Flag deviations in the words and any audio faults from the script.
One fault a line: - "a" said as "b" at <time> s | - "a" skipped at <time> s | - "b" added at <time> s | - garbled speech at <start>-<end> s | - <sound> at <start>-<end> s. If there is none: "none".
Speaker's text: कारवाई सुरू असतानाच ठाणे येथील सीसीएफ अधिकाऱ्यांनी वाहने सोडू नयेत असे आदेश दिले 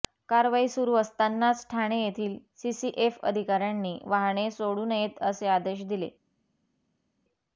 none